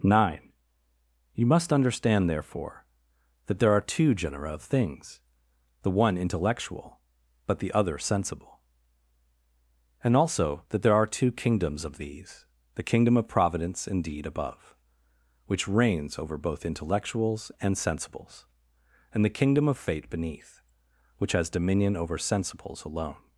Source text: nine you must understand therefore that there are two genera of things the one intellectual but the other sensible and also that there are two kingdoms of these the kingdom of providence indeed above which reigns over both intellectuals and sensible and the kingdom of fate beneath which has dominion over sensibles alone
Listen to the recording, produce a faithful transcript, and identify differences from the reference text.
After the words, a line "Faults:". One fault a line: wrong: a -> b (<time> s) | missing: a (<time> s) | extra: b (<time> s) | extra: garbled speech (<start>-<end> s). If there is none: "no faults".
nine you must understand therefore that there are two genera of things the one intellectual but the other sensible and also that there are two kingdoms of these the kingdom of providence indeed above which reigns over both intellectuals and sensibles and the kingdom of fate beneath which has dominion over sensibles alone
Faults:
wrong: sensible -> sensibles (17.7 s)